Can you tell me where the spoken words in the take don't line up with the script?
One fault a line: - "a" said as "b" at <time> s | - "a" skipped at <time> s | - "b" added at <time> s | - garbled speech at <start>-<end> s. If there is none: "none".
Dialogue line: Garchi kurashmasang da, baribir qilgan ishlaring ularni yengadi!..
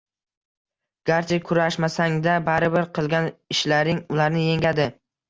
none